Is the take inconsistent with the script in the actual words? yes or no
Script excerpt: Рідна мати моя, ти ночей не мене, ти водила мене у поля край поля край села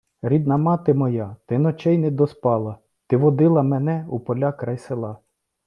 yes